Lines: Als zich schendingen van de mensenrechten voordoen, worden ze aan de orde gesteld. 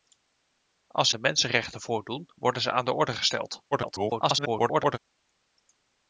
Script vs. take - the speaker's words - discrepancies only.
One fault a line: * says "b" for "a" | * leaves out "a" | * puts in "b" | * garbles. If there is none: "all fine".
* leaves out "zich schendingen van"
* garbles